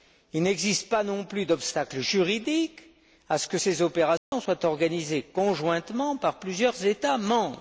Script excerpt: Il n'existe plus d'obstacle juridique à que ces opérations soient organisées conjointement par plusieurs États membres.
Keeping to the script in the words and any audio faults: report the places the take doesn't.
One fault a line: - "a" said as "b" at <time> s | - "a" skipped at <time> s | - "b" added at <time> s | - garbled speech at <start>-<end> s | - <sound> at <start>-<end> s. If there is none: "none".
- "pas non" added at 0.9 s
- "ce" added at 3.4 s
- dropout at 4.2-4.3 s